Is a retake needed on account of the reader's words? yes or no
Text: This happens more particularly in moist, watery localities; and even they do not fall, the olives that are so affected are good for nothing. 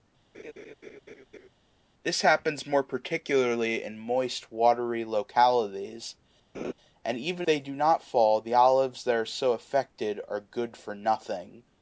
no